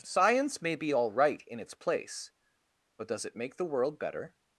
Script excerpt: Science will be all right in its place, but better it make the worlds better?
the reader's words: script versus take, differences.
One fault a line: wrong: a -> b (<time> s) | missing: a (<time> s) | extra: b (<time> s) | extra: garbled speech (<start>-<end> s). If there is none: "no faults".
wrong: will -> may (0.6 s)
wrong: better -> does (3.1 s)
wrong: worlds -> world (3.6 s)